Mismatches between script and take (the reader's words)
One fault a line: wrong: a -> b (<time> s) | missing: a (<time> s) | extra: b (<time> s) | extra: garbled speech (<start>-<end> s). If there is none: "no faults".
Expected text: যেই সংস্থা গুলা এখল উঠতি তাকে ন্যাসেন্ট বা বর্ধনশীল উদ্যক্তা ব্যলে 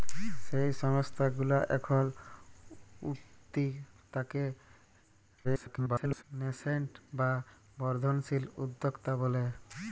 extra: garbled speech (5.4-6.2 s)